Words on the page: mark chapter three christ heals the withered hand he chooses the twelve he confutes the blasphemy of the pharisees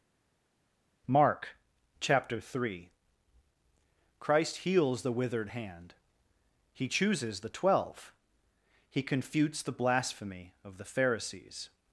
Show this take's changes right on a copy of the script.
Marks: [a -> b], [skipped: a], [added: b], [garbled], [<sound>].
mark chapter three christ heals the withered hand he chooses the twelve he confutes the blasphemy of the pharisees